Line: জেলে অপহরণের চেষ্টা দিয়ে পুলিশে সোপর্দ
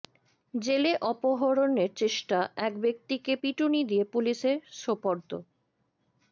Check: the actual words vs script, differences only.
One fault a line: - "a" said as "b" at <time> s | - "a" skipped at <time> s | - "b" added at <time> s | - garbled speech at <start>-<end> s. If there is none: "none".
- "এক ব্যক্তিকে পিটুনি" added at 2.6 s